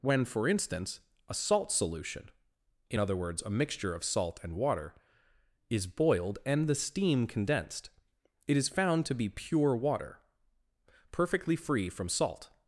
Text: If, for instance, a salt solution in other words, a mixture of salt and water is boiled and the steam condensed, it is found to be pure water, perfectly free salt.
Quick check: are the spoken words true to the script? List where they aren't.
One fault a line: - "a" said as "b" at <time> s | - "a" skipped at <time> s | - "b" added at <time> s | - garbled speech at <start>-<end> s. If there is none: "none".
- "If" said as "When" at 0.0 s
- "from" added at 11.9 s